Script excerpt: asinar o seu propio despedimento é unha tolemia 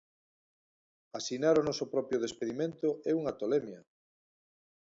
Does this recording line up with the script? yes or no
no